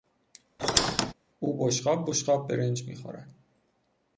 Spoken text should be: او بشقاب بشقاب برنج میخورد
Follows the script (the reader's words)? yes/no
yes